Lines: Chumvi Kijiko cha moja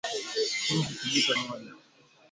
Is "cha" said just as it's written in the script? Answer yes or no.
no